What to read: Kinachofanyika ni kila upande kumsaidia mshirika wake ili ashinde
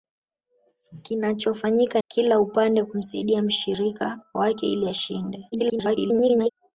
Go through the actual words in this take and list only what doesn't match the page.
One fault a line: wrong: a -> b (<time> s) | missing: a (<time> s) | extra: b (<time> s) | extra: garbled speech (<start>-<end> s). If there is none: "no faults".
missing: ni (2.0 s)
extra: garbled speech (5.5-6.5 s)